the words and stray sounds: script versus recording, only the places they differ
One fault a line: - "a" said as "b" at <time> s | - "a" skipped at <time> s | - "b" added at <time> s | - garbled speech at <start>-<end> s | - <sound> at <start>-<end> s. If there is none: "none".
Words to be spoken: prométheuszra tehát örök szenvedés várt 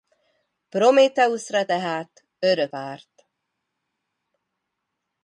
- "szenvedés" skipped at 2.7 s